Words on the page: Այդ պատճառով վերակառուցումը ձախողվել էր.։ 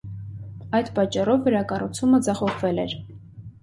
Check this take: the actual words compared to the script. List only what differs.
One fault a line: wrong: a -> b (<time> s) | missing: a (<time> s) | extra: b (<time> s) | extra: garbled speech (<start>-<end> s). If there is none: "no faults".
no faults